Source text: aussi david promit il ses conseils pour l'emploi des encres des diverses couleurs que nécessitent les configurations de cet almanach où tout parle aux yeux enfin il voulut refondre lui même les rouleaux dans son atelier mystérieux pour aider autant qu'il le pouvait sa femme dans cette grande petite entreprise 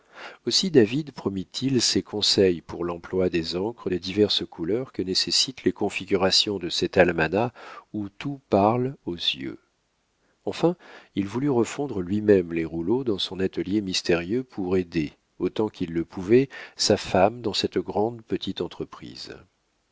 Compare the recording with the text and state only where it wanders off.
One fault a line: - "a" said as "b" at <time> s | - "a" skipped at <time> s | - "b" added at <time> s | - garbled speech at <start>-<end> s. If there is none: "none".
none